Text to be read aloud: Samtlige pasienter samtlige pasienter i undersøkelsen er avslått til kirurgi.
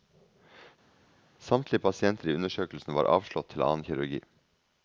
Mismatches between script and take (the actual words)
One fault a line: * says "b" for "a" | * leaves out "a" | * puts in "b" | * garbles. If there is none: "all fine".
* leaves out "samtlige pasienter"
* says "var" for "er"
* puts in "annen"